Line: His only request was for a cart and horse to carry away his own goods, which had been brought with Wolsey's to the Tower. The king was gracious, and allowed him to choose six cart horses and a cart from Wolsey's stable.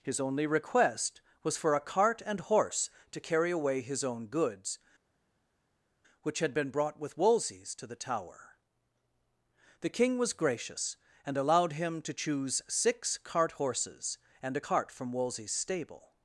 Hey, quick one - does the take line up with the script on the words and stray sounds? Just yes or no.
yes